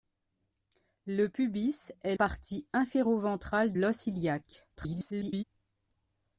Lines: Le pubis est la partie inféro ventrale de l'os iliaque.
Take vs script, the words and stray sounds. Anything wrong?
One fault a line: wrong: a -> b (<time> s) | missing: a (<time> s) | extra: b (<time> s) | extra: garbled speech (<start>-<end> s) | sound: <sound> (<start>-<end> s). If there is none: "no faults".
missing: la (2.1 s)
missing: de (3.7 s)
extra: garbled speech (4.8-5.4 s)